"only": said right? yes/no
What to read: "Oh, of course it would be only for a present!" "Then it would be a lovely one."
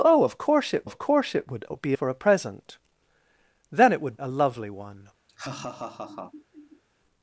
no